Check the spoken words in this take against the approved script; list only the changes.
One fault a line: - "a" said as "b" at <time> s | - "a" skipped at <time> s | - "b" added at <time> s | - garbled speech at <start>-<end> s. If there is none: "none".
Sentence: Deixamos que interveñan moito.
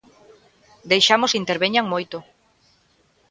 none